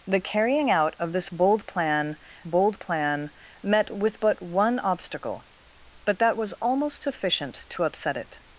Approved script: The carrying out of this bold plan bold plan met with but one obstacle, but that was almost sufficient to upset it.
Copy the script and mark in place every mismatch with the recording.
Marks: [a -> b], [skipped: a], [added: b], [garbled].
The carrying out of this bold plan bold plan met with but one obstacle, but that was almost sufficient to upset it.